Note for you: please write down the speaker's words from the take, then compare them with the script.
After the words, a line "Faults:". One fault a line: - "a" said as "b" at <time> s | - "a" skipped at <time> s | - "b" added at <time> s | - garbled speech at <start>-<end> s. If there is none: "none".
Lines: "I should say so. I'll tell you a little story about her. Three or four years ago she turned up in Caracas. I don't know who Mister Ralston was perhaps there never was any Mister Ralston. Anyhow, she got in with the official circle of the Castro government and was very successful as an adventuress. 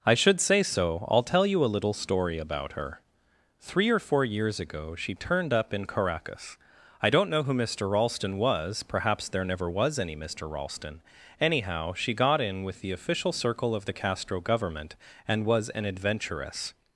"I should say so. I'll tell you a little story about her. Three or four years ago she turned up in Caracas. I don't know who Mister Ralston was perhaps there never was any Mister Ralston. Anyhow, she got in with the official circle of the Castro government and was an adventuress.
Faults:
- "very successful as" skipped at 15.7 s